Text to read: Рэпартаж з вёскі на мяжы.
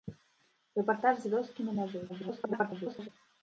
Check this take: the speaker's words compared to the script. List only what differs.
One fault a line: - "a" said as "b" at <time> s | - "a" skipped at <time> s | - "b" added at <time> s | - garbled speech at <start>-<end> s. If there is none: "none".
- garbled speech at 2.1-3.1 s